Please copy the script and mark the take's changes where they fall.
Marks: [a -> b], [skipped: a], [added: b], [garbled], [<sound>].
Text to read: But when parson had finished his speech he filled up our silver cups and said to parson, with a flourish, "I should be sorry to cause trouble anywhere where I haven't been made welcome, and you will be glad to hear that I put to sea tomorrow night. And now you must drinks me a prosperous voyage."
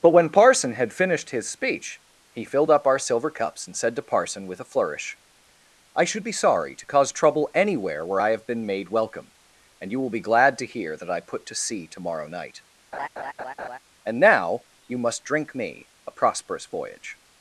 But when parson had finished his speech he filled up our silver cups and said to parson, with a flourish, "I should be sorry to cause trouble anywhere where I [haven't -> have] been made welcome, and you will be glad to hear that I put to sea tomorrow night. [laugh] And now you must [drinks -> drink] me a prosperous voyage."